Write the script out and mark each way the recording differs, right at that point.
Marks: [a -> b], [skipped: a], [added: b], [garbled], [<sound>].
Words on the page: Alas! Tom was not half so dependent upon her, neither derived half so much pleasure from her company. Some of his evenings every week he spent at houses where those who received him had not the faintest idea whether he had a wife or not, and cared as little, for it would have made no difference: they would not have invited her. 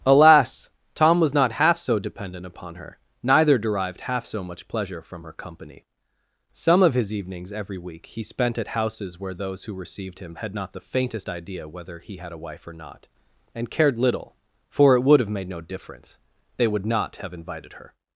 Alas! Tom was not half so dependent upon her, neither derived half so much pleasure from her company. Some of his evenings every week he spent at houses where those who received him had not the faintest idea whether he had a wife or not, and cared [skipped: as] little, for it would have made no difference: they would not have invited her.